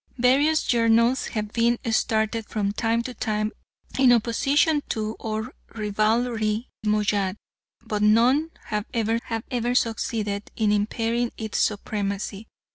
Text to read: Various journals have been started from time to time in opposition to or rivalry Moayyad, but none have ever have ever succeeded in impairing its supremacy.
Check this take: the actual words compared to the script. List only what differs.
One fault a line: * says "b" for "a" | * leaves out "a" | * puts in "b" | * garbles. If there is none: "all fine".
all fine